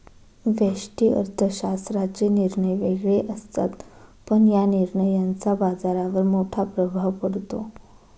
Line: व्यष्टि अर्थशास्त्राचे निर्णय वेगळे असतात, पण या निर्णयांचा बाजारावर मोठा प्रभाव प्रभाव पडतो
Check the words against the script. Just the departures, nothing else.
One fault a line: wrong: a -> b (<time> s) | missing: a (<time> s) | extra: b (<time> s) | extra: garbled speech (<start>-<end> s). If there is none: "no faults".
missing: प्रभाव (7.1 s)